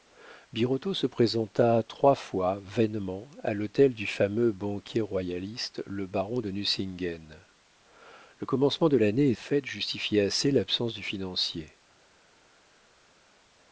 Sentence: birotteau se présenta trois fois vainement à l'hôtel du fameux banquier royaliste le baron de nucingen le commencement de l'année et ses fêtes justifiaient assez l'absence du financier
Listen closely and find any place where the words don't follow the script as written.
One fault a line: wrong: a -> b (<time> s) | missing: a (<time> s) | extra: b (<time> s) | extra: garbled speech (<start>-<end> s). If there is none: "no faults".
missing: ses (9.3 s)